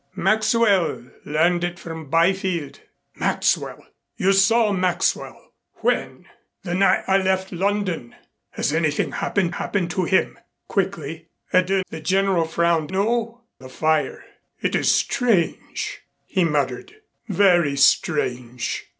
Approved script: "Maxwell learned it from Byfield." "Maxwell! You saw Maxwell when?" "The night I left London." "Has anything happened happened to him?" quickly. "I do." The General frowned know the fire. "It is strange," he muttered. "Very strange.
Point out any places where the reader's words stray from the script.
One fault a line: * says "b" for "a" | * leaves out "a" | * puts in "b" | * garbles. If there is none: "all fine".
all fine